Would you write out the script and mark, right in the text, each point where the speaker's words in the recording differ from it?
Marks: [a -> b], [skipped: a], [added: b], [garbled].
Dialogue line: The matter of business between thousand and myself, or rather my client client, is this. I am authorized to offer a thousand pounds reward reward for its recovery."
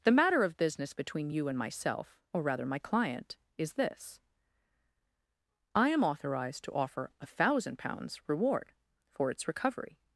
The matter of business between [thousand -> you] and myself, or rather my client [skipped: client,] is this. I am authorized to offer a thousand pounds reward [skipped: reward] for its recovery."